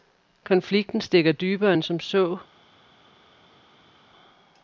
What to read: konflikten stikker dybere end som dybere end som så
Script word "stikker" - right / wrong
right